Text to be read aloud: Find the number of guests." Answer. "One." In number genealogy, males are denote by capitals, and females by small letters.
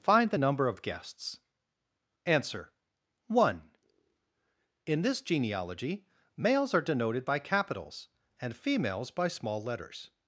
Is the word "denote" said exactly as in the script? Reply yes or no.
no